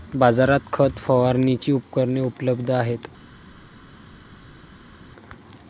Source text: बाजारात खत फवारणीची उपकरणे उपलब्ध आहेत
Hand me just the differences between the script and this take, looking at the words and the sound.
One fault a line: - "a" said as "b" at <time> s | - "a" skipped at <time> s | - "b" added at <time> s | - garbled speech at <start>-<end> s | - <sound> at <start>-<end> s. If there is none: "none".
none